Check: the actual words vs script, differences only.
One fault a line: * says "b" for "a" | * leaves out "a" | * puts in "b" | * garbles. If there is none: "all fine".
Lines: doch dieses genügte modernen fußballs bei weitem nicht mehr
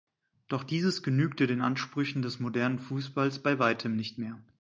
* puts in "den ansprüchen des"